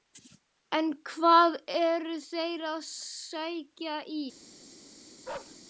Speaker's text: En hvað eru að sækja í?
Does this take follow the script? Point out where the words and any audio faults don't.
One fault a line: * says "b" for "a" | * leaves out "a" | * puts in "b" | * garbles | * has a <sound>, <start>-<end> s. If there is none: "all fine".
* puts in "þeir"
* has a bark, 5.2-5.6 s